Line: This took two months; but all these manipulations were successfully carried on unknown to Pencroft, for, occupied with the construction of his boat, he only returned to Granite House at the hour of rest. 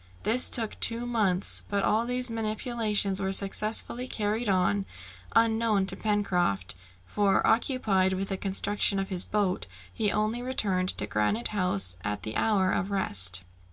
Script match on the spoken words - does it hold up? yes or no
yes